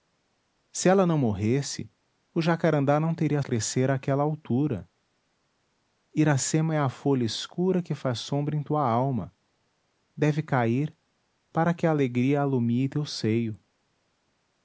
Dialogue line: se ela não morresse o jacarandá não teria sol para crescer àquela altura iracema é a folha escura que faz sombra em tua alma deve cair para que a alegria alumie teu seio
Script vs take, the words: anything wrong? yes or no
yes